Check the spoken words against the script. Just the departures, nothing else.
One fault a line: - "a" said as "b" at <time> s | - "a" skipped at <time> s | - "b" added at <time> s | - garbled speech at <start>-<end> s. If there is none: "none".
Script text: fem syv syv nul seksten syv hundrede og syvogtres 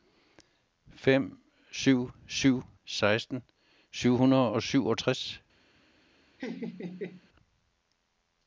- "nul" skipped at 2.6 s